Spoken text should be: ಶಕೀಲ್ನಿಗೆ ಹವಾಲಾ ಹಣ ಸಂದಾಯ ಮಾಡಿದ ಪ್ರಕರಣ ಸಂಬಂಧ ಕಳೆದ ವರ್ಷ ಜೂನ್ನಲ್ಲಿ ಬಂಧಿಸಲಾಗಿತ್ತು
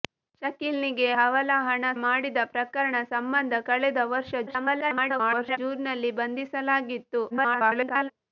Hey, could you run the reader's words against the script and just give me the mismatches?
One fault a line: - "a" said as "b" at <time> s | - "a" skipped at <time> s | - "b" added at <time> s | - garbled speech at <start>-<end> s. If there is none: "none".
- "ಸಂದಾಯ" skipped at 1.9 s
- garbled speech at 4.5-5.6 s
- garbled speech at 7.3-8.1 s